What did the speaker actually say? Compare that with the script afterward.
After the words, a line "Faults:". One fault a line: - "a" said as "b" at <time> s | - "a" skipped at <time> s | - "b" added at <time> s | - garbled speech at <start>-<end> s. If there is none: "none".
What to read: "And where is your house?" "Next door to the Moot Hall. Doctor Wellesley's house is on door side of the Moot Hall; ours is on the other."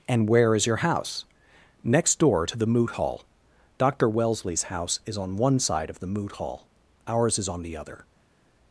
"And where is your house?" "Next door to the Moot Hall. Doctor Wellesley's house is on one side of the Moot Hall; ours is on the other."
Faults:
- "door" said as "one" at 5.4 s